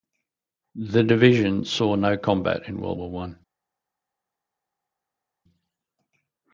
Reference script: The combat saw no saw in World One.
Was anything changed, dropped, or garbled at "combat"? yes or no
yes